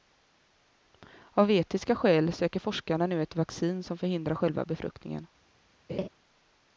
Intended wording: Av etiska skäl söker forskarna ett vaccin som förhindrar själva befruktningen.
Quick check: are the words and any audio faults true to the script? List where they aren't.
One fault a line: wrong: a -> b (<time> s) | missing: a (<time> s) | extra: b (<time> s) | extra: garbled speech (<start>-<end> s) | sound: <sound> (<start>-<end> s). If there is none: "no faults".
extra: nu (3.1 s)
sound: laugh (5.9-6.1 s)